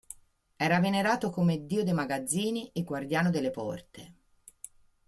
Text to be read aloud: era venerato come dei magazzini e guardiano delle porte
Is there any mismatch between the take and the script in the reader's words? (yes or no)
yes